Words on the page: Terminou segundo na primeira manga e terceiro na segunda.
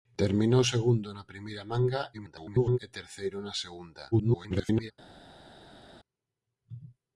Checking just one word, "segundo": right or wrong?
right